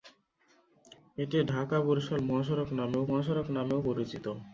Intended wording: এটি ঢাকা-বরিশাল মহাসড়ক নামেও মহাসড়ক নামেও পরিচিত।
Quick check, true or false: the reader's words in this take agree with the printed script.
true